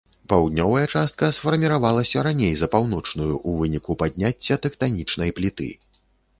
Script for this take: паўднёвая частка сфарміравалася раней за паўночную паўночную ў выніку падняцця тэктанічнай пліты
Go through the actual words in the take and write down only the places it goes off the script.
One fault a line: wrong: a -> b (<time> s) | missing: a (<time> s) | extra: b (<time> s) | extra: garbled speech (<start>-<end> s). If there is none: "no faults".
missing: паўночную (3.3 s)